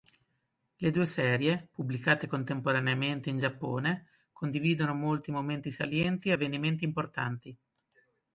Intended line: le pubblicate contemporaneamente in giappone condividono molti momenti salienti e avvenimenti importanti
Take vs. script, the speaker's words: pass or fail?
fail